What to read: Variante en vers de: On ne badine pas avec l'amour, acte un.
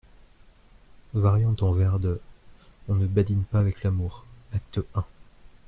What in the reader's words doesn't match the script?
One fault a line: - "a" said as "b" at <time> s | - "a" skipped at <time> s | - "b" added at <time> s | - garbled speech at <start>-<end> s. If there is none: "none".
none